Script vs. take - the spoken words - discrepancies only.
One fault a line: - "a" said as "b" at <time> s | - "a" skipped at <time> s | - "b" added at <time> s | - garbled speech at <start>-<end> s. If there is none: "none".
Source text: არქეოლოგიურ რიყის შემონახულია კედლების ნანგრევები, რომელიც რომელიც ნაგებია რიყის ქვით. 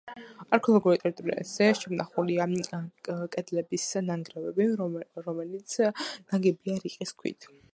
- "რიყის" said as "ტერიტორიაზე" at 1.0 s
- "რომელიც" skipped at 5.8 s